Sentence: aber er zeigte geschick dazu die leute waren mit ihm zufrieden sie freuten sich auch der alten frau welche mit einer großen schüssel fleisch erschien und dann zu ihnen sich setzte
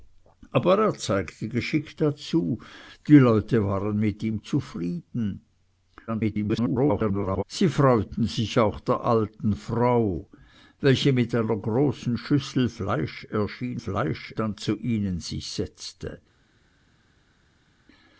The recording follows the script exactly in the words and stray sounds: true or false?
false